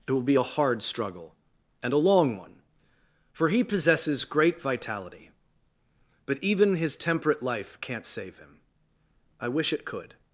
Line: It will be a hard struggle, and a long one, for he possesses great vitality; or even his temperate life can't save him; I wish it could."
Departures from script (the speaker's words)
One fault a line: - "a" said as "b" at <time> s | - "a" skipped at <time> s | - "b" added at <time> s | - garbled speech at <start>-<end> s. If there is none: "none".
- "or" said as "but" at 6.3 s